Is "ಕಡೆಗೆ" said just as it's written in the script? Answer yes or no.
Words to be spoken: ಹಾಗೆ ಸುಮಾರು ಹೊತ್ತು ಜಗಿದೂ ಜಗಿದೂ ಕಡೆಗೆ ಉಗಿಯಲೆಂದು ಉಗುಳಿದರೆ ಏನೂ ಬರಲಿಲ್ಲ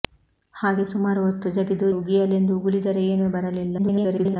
no